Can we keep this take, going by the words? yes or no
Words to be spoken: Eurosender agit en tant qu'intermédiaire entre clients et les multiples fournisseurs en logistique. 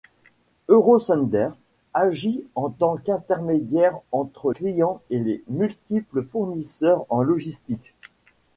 yes